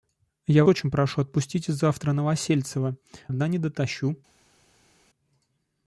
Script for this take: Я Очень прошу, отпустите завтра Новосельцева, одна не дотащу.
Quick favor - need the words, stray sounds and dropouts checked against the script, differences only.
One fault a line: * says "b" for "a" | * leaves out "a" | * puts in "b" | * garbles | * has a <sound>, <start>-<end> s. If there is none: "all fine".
all fine